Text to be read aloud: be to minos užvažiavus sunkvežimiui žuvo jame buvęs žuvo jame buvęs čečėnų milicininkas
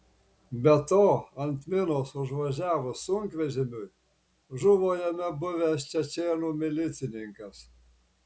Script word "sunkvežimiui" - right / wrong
right